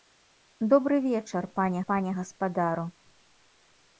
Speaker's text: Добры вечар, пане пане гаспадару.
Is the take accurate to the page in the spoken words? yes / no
yes